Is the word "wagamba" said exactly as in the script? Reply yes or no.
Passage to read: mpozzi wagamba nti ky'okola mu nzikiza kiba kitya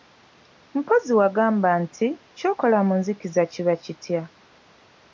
yes